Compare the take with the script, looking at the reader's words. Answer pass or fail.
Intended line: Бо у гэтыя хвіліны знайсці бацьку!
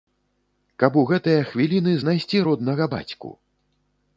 fail